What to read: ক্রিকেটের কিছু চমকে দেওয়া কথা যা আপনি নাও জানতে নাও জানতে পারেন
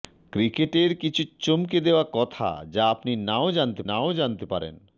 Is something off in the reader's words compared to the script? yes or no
no